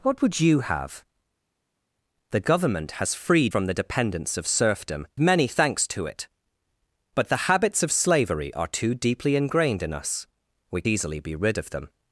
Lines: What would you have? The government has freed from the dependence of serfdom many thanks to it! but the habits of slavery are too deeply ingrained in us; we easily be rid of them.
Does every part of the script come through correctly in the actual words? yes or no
yes